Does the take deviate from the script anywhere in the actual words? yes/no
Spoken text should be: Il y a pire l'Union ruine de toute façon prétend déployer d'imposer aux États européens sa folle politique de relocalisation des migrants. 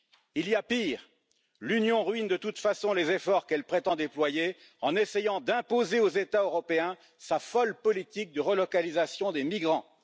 yes